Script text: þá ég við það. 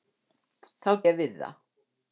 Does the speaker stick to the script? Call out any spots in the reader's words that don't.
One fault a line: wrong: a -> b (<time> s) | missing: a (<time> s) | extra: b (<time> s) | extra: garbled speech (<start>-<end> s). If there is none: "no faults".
no faults